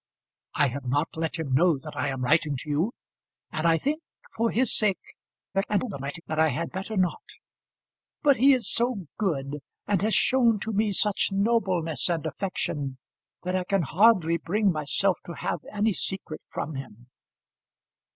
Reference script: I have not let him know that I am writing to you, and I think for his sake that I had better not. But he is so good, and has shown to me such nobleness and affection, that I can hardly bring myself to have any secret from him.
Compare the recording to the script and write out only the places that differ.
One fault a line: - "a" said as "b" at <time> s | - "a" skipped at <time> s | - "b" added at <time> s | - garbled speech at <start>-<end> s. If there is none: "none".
- garbled speech at 5.5-6.2 s